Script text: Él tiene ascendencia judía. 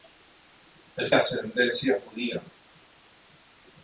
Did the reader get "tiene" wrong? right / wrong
wrong